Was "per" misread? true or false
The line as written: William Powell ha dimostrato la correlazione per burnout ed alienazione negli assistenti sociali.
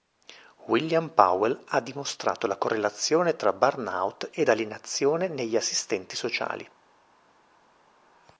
true